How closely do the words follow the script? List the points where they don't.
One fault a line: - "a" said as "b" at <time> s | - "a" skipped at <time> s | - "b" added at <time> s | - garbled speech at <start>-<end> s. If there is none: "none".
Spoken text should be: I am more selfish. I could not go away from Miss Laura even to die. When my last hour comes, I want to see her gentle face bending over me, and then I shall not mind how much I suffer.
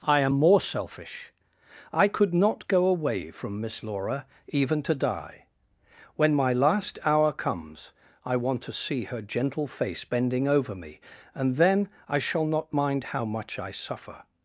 none